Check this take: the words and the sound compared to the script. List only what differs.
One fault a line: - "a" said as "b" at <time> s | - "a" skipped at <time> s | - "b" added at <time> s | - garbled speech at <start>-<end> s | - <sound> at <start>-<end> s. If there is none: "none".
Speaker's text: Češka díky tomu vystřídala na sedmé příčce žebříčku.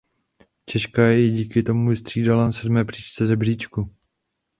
- "ji" added at 1.1 s